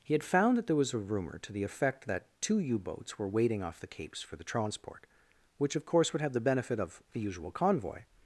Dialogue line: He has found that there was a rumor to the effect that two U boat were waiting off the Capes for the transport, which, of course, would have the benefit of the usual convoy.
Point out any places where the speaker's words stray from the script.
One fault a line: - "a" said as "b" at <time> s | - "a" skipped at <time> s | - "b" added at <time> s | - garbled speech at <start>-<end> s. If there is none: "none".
- "has" said as "had" at 0.1 s
- "boat" said as "boats" at 2.8 s